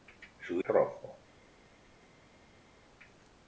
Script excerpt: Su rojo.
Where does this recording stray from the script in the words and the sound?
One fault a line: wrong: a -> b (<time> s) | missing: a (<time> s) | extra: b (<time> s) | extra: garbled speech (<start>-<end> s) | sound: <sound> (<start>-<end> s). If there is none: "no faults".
no faults